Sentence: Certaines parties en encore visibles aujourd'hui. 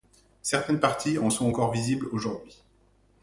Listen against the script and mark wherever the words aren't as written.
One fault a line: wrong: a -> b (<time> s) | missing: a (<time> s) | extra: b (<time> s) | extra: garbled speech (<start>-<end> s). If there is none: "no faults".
extra: sont (1.3 s)